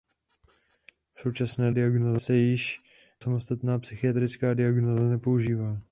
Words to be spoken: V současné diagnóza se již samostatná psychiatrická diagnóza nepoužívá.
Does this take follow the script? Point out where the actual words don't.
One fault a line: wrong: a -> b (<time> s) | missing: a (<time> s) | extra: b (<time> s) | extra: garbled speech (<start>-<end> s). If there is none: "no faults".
no faults